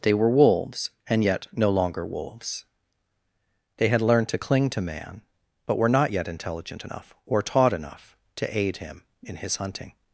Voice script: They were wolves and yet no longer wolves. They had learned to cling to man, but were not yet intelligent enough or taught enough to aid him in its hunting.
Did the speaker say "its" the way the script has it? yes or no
no